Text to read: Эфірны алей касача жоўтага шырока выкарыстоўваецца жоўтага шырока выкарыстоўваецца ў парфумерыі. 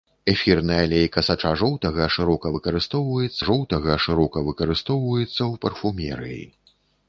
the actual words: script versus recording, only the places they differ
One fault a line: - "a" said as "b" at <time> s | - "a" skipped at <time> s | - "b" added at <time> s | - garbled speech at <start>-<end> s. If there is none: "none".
none